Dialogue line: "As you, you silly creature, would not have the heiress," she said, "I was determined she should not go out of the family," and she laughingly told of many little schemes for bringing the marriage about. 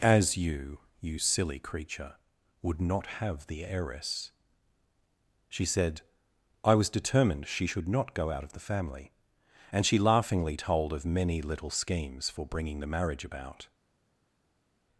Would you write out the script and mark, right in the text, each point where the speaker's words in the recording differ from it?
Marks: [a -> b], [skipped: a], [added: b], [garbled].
"As you, you silly creature, would not have the heiress," she said, "I was determined she should not go out of the family," and she laughingly told of many little schemes for bringing the marriage about.